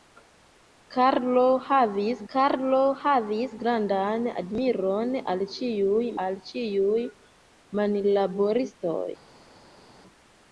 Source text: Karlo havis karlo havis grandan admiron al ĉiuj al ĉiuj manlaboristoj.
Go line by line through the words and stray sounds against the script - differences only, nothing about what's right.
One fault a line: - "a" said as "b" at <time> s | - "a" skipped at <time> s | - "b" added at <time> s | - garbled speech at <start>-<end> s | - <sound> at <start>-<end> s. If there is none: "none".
none